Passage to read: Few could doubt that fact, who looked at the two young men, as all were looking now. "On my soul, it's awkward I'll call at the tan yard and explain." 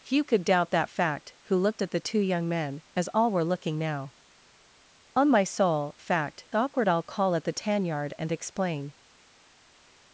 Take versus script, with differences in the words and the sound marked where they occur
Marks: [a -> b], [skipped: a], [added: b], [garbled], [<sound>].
Few could doubt that fact, who looked at the two young men, as all were looking now. "On my soul, [it's -> fact] awkward I'll call at the tan yard and explain."